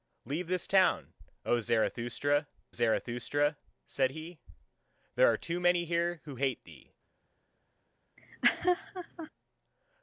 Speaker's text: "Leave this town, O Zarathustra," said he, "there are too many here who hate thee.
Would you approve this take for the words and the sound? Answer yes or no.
no